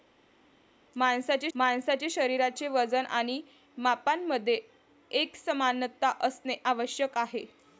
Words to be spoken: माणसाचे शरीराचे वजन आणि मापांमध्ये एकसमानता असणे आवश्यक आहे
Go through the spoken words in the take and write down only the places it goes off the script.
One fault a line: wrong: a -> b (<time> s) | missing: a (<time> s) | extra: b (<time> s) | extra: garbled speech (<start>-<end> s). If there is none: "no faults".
extra: माणसाचे (1.5 s)